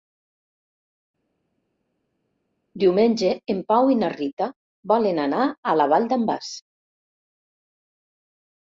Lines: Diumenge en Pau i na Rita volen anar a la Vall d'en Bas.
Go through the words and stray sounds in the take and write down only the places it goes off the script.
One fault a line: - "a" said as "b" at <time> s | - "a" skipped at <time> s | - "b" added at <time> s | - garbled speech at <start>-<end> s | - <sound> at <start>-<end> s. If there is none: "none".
none